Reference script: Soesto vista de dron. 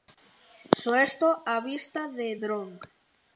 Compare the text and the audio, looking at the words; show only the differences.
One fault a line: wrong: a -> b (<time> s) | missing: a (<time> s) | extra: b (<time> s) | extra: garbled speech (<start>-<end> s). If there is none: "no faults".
extra: a (1.4 s)